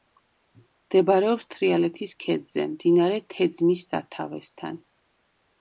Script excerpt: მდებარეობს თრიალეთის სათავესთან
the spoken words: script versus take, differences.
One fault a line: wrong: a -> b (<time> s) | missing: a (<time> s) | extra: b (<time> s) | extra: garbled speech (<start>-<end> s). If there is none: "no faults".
extra: ქედზე მდინარე თეძმის (2.2 s)